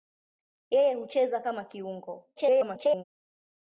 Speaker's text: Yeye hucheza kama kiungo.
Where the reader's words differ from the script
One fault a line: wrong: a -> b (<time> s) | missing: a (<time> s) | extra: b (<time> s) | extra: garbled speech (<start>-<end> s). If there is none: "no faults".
extra: garbled speech (2.4-3.0 s)